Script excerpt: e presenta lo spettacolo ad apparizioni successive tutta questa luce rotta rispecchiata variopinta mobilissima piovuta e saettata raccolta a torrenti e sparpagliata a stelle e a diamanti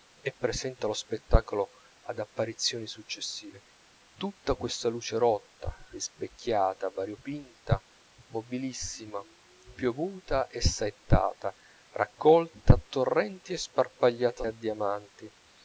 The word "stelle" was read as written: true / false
false